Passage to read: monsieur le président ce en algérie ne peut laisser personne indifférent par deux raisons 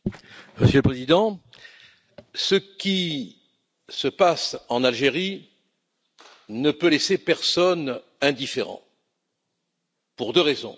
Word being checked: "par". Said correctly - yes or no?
no